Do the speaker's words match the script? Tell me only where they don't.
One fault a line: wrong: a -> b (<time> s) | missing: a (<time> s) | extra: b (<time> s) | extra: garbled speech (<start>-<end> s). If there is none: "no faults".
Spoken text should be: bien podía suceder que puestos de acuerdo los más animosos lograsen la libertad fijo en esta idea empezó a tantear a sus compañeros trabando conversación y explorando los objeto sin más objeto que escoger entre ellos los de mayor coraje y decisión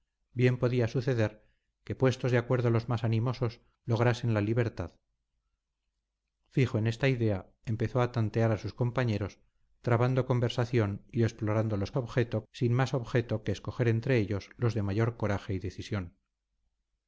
no faults